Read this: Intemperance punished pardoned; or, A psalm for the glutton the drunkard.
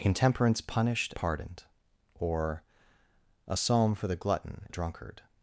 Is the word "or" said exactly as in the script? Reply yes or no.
yes